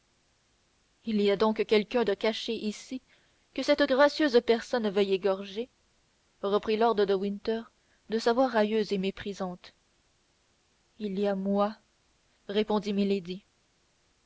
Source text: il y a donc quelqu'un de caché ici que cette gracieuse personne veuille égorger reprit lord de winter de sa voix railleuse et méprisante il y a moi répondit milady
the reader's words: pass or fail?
pass